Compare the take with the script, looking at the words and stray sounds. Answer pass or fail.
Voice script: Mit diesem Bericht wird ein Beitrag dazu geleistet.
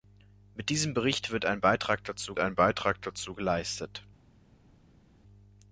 fail